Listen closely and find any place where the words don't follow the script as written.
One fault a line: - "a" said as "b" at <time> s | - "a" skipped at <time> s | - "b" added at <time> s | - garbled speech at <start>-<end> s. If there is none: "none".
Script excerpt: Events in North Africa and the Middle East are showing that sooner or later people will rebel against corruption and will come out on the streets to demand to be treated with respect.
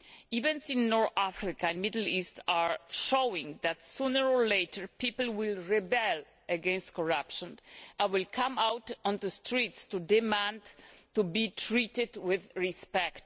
none